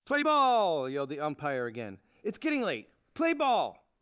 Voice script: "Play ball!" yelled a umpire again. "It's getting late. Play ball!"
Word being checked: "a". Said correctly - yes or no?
no